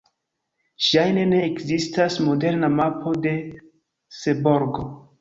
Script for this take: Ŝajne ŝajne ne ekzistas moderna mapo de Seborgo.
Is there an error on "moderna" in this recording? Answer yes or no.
no